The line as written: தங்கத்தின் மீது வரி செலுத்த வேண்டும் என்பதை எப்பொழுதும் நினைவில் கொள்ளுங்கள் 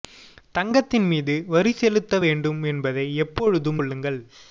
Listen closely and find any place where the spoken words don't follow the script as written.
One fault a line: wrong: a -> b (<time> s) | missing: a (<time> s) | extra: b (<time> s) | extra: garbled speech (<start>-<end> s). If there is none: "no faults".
missing: நினைவில் (3.8 s)